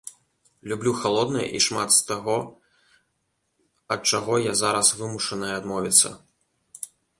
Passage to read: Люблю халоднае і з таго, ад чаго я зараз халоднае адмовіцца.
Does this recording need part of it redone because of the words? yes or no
yes